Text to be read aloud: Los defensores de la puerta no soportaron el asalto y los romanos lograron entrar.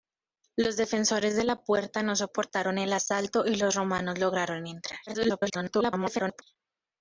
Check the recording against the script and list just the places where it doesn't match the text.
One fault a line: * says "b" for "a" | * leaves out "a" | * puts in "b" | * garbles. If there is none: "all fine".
* garbles